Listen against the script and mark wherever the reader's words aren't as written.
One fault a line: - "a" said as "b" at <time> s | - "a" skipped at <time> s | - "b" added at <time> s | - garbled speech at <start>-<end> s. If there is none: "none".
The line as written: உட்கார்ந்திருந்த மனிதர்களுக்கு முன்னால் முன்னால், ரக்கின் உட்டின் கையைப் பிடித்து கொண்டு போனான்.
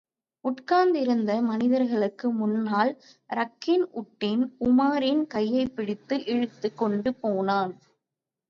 - "முன்னால்" skipped at 2.9 s
- "உமாரின்" added at 4.6 s
- "இழுத்துக்" added at 6.2 s